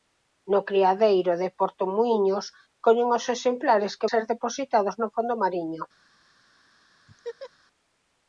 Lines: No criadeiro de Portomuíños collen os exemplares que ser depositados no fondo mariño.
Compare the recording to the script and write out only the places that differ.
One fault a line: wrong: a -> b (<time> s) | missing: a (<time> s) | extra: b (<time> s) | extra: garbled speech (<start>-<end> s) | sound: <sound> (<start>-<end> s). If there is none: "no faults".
sound: laugh (7.1-7.5 s)